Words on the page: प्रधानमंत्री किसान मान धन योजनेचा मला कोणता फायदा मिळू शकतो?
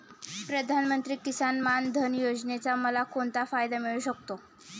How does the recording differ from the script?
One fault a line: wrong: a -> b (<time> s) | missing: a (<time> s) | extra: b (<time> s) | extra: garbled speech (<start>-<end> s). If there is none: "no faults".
no faults